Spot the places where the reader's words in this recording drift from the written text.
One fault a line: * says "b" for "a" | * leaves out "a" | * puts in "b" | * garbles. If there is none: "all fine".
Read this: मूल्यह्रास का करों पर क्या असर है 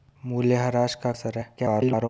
* leaves out "करों पर क्या"
* garbles